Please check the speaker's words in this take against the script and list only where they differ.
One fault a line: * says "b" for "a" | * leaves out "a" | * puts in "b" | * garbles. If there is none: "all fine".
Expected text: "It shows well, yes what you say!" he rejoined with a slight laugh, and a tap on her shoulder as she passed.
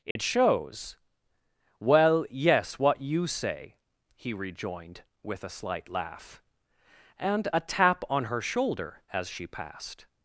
all fine